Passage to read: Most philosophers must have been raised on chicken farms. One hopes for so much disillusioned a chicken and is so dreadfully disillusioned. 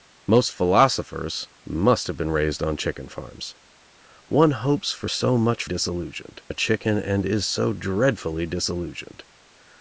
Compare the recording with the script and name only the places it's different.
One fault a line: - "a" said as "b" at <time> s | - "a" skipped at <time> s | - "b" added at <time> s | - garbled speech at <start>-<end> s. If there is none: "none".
none